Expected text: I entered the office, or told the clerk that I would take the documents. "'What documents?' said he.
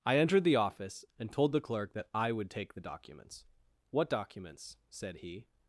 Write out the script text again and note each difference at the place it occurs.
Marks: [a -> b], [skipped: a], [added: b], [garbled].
I entered the office, [or -> and] told the clerk that I would take the documents. "'What documents?' said he.